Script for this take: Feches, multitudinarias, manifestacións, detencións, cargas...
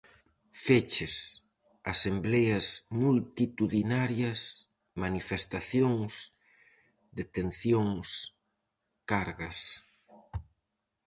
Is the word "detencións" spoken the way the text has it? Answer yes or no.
yes